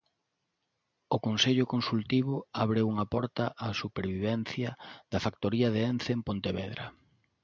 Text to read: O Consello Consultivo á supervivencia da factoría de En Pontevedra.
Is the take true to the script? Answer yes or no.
no